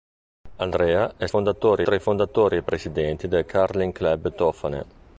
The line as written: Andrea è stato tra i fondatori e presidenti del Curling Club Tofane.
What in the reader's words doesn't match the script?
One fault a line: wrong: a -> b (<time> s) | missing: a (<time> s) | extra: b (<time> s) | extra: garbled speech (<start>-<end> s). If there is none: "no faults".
wrong: stato -> fondatori (1.3 s)